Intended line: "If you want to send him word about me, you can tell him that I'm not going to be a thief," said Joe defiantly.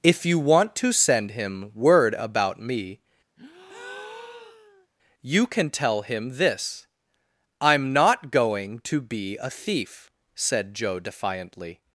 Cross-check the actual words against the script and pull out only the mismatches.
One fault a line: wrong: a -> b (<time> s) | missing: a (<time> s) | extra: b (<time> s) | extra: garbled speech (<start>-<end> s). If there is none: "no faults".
wrong: that -> this (6.4 s)